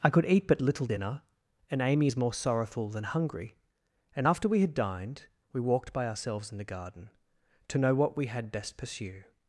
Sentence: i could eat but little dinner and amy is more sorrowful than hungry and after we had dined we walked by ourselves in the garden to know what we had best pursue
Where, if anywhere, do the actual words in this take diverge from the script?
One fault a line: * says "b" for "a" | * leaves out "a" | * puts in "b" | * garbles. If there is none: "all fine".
all fine